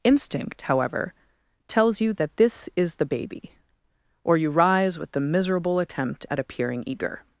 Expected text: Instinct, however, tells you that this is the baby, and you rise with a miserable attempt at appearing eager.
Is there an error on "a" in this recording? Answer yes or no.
yes